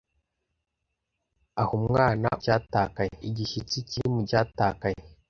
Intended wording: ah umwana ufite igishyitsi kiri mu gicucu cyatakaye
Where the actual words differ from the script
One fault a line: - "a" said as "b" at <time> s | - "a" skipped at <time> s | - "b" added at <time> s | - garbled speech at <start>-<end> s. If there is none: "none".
- "ufite" said as "cyatakaye" at 2.4 s
- "gicucu" skipped at 4.2 s